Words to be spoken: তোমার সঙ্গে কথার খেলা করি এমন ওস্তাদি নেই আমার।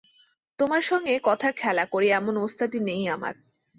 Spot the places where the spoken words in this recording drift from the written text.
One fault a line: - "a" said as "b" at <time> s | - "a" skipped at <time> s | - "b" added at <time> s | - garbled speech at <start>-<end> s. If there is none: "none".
none